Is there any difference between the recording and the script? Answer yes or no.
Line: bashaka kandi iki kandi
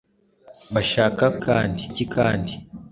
no